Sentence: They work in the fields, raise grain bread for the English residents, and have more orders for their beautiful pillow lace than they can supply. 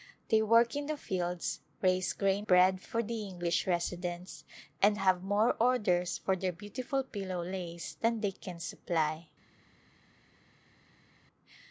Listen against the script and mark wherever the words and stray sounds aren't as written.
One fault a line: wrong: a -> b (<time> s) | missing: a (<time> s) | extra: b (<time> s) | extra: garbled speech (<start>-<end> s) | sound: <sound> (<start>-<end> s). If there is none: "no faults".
no faults